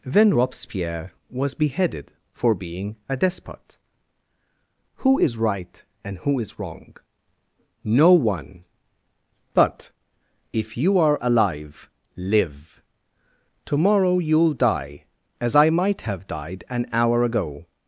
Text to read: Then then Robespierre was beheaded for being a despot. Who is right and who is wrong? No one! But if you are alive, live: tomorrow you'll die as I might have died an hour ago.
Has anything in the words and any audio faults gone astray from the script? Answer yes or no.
yes